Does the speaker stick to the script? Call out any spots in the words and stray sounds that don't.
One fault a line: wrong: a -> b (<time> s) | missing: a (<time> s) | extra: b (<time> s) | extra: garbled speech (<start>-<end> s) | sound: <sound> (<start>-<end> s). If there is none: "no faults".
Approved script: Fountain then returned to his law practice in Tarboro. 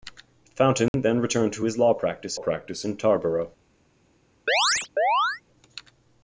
sound: dropout (0.9-0.9 s)
extra: practice (2.3 s)
sound: chirp (4.5-5.4 s)